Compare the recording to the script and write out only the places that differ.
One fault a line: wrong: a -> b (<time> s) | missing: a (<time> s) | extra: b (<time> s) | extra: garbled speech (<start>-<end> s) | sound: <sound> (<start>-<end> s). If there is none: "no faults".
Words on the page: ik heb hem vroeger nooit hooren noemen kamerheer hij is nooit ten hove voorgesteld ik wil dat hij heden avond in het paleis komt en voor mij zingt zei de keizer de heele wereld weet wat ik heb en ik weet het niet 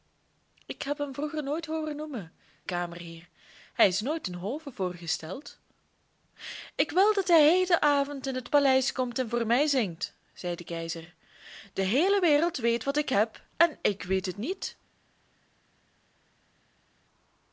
no faults